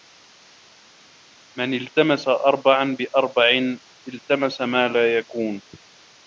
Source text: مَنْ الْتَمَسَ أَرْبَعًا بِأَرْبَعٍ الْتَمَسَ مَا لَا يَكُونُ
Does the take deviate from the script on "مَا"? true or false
false